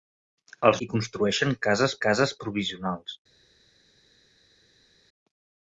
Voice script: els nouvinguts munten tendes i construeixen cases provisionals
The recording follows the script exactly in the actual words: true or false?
false